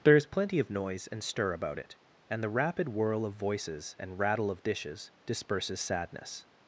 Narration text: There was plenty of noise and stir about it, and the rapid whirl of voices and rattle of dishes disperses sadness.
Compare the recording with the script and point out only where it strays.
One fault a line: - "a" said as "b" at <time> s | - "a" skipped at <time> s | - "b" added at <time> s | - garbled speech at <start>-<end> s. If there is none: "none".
- "was" said as "is" at 0.1 s